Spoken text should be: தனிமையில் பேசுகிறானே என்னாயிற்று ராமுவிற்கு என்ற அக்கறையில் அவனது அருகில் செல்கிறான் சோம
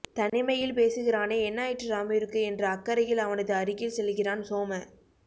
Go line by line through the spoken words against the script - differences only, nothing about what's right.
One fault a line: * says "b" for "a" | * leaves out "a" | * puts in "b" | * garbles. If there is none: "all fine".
all fine